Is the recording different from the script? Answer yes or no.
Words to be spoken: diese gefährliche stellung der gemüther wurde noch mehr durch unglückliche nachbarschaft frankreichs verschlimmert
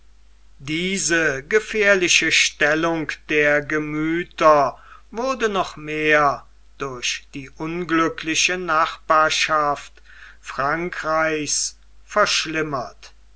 yes